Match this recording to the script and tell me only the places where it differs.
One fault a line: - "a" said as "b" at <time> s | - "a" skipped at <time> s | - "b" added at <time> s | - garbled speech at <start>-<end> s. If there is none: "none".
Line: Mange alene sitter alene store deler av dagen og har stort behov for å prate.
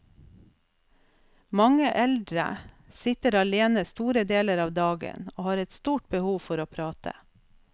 - "alene" said as "eldre" at 1.9 s
- "et" added at 5.6 s